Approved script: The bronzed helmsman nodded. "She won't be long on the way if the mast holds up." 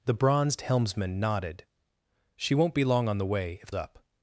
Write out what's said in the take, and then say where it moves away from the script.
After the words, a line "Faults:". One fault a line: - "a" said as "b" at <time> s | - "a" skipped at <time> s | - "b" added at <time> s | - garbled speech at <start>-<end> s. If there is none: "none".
The bronzed helmsman nodded. "She won't be long on the way if up."
Faults:
- "the mast holds" skipped at 3.7 s